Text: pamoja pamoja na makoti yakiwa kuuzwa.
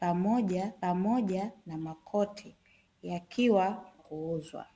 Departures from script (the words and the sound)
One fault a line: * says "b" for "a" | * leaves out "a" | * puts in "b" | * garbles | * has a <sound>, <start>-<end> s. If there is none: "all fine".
all fine